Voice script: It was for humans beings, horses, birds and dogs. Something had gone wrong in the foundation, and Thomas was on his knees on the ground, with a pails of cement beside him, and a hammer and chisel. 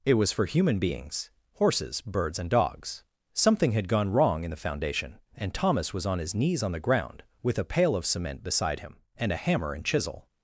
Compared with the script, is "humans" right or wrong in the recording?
wrong